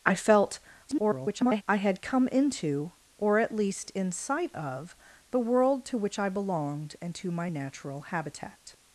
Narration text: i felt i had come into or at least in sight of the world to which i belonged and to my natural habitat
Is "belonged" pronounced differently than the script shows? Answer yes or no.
no